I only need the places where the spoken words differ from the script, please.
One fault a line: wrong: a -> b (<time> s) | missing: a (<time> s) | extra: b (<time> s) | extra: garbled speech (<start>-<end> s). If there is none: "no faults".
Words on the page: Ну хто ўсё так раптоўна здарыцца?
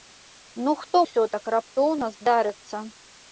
no faults